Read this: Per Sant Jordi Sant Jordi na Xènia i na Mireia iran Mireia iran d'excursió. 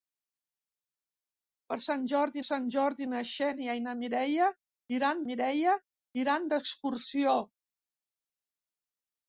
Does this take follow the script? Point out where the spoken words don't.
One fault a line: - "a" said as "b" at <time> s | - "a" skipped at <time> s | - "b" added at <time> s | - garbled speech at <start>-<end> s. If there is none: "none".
none